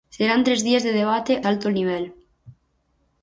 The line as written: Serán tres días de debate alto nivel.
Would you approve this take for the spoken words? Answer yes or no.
yes